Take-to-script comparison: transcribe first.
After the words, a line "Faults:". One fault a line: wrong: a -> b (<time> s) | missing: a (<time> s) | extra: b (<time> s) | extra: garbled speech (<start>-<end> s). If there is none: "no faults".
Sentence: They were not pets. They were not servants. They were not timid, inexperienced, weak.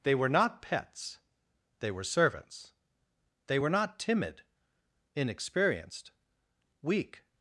They were not pets. They were servants. They were not timid, inexperienced, weak.
Faults:
missing: not (2.0 s)